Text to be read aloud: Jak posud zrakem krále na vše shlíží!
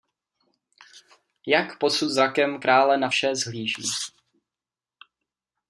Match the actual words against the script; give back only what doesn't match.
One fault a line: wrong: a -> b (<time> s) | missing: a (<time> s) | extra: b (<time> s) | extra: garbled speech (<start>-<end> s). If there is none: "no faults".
no faults